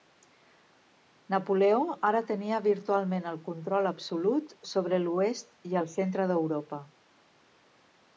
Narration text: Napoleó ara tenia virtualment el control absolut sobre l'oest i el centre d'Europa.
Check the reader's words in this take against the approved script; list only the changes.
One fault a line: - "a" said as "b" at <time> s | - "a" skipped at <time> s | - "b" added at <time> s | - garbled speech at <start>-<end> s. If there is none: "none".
none